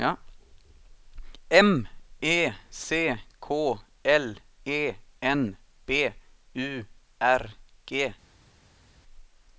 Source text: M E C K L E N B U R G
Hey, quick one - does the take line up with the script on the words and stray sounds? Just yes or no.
yes